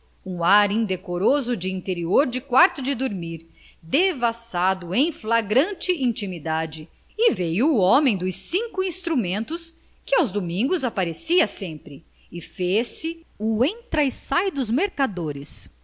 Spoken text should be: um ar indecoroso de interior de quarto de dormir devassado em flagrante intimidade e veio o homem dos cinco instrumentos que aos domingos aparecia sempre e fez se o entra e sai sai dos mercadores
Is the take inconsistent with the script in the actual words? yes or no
yes